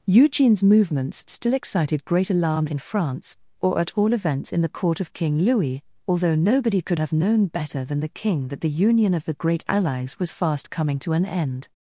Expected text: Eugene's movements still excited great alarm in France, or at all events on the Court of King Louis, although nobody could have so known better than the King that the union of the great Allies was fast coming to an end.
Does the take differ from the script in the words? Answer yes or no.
yes